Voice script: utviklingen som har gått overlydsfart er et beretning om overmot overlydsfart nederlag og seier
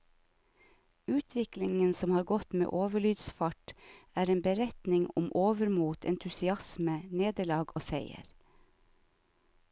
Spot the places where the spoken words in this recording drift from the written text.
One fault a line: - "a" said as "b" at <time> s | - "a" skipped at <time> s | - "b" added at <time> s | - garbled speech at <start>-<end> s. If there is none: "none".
- "med" added at 2.5 s
- "et" said as "en" at 4.3 s
- "overlydsfart" said as "entusiasme" at 6.1 s